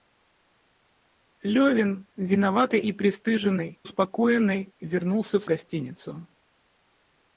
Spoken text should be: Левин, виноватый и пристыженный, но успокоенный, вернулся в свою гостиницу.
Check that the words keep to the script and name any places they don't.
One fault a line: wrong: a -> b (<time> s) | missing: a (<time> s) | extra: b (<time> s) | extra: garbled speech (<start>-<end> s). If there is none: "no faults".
missing: но (3.8 s)
missing: свою (5.5 s)